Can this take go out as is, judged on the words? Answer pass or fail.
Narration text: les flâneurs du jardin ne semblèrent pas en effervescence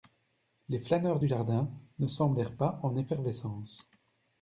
pass